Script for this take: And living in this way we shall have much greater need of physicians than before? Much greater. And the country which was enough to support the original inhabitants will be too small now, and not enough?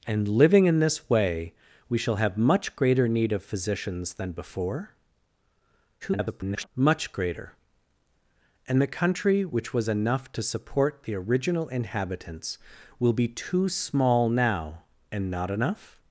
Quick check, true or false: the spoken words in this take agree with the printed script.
false